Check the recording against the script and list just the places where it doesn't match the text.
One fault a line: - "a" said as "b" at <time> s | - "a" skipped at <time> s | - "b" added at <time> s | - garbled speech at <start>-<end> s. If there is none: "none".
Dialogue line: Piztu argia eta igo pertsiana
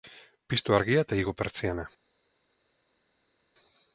none